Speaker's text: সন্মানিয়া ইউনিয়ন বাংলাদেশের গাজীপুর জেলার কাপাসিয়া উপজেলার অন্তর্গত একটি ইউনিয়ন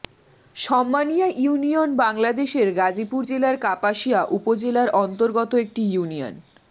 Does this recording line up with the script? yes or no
yes